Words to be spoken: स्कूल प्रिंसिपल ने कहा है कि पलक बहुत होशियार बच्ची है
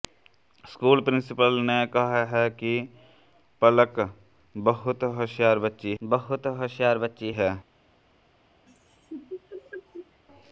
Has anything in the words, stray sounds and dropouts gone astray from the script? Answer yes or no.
yes